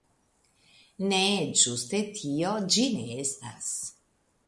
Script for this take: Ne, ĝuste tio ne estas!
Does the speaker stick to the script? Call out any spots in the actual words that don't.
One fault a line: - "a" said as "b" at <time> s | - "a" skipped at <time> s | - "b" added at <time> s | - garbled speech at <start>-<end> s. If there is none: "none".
- "ĝi" added at 2.8 s